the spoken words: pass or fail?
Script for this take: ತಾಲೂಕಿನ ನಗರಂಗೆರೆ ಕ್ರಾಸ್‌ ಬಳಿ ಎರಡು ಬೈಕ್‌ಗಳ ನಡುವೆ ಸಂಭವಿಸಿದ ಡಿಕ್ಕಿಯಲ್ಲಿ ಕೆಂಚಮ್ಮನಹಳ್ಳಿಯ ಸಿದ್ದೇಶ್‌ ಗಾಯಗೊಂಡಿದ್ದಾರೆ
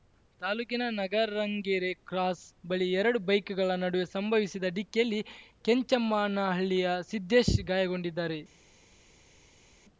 pass